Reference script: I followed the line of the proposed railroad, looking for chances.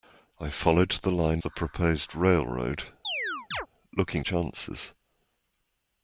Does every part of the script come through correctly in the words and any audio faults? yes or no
no